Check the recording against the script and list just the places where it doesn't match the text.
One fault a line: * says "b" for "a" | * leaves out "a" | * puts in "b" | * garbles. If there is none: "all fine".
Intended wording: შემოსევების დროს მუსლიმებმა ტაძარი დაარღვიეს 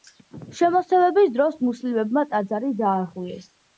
all fine